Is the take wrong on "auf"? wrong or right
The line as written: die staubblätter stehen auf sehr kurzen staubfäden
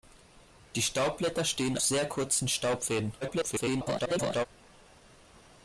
wrong